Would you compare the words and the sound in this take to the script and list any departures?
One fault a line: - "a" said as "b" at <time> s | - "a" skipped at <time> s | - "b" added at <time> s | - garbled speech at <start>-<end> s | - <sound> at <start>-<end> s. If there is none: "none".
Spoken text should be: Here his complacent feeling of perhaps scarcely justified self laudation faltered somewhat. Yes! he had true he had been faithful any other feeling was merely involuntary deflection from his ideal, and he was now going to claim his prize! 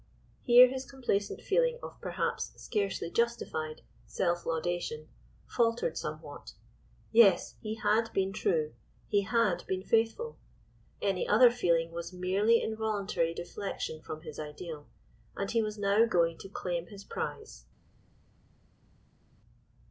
- "been" added at 8.1 s